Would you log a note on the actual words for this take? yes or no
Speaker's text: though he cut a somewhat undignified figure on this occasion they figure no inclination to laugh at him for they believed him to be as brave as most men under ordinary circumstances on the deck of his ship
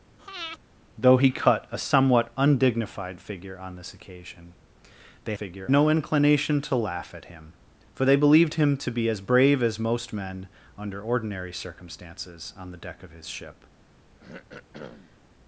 no